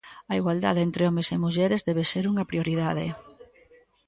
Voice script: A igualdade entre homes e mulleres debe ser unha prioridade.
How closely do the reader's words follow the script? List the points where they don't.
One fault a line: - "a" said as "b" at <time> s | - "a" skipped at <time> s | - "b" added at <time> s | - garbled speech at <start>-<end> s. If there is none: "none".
none